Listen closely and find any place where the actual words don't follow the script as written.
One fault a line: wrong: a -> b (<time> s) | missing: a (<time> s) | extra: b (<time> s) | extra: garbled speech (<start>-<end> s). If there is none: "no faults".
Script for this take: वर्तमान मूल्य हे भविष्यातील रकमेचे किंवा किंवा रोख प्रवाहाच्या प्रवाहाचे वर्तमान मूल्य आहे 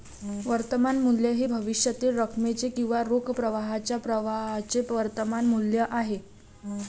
missing: किंवा (3.0 s)